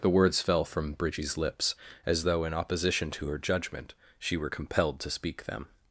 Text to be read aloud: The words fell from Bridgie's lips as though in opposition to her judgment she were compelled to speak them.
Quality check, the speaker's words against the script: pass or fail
pass